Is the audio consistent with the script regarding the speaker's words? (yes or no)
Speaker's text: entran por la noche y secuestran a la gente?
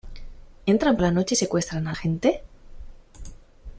no